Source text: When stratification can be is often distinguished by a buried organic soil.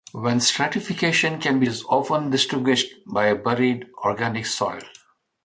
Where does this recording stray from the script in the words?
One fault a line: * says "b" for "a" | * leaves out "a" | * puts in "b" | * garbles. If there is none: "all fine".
all fine